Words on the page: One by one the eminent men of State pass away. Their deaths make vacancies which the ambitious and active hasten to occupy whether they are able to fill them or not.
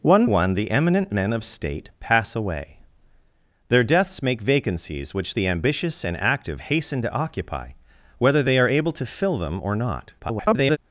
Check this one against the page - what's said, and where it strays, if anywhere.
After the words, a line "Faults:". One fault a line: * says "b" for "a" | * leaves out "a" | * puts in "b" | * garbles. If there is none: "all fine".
One one the eminent men of State pass away. Their deaths make vacancies which the ambitious and active hasten to occupy whether they are able to fill them or not. [garbled]
Faults:
* leaves out "by"
* garbles